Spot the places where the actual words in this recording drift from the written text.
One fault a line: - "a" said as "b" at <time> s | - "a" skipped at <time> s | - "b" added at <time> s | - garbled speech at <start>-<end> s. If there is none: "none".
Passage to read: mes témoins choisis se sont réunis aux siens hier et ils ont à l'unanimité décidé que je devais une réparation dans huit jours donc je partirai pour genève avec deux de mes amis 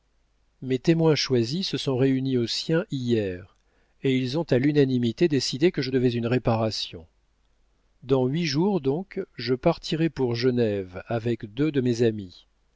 none